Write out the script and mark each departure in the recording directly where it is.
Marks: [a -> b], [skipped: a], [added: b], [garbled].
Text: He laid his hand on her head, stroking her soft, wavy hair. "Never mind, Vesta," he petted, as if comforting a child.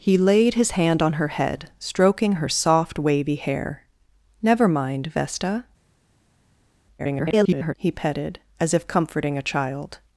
He laid his hand on her head, stroking her soft, wavy hair. "Never mind, Vesta," [garbled] he petted, as if comforting a child.